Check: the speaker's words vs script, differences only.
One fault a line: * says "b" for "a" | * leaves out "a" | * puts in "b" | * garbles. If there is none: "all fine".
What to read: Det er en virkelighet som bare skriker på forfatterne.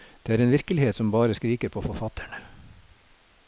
all fine